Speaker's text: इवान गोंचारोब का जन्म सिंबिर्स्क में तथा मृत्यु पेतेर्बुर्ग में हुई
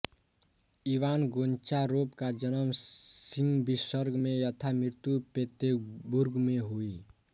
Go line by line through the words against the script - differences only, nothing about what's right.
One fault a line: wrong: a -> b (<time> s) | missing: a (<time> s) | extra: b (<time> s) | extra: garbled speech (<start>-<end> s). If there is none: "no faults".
no faults